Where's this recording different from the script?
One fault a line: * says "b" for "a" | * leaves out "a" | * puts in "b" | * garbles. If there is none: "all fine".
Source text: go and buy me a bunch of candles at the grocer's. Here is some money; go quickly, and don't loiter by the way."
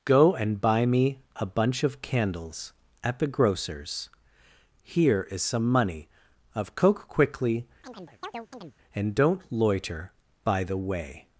* says "of coke" for "go"